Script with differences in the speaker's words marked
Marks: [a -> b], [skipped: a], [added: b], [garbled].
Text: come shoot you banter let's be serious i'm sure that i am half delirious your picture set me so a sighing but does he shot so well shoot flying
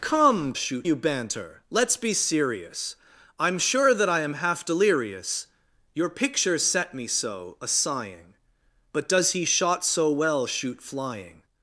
come shoot you banter let's be serious i'm sure that i am half delirious your picture set me so a sighing but does he shot so well shoot flying